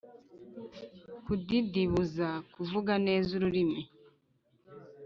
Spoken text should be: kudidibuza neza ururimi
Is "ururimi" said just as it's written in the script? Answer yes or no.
yes